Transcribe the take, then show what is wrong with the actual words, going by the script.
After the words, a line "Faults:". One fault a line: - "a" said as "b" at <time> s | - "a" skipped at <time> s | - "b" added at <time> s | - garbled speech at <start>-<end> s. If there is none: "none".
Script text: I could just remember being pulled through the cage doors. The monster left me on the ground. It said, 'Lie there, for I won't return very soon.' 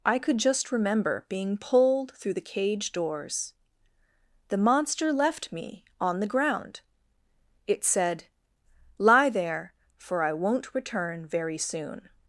I could just remember being pulled through the cage doors. The monster left me on the ground. It said, 'Lie there, for I won't return very soon.'
Faults:
none